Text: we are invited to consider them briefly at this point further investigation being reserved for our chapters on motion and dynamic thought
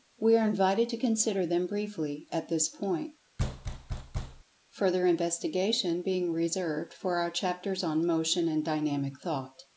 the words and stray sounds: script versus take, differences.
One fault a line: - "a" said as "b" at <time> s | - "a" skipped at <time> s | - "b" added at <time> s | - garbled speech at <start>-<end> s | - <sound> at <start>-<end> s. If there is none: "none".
- thud at 3.4-4.4 s